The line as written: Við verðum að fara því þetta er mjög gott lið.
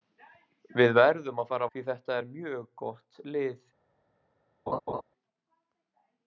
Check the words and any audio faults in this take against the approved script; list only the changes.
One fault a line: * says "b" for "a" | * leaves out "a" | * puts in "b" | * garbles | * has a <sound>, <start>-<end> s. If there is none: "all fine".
* has a laugh, 4.7-5.0 s